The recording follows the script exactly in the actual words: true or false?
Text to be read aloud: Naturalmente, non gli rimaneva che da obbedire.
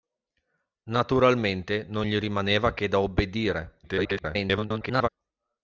false